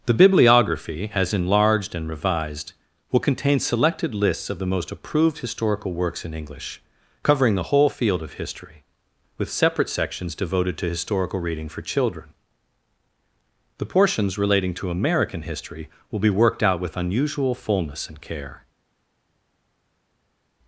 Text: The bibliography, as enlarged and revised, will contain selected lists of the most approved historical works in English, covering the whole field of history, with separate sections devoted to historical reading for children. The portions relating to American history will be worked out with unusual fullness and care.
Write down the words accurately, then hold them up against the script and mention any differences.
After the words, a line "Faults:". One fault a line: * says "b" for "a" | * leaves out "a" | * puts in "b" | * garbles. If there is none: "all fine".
The bibliography, as enlarged and revised, will contain selected lists of the most approved historical works in English, covering the whole field of history, with separate sections devoted to historical reading for children. The portions relating to American history will be worked out with unusual fullness and care.
Faults:
all fine